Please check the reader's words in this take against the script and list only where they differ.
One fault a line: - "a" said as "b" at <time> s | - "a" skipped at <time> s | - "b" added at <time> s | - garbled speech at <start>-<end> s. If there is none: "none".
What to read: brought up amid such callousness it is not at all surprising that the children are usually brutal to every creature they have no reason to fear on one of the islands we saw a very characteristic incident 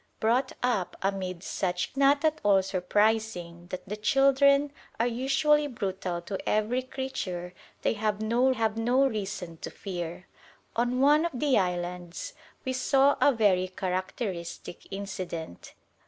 - "callousness it is" skipped at 1.9 s
- "have no" added at 8.5 s